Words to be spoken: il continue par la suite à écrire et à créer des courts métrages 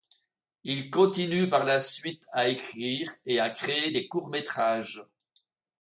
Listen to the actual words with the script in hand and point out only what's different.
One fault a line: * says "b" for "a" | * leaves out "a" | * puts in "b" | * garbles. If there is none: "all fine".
all fine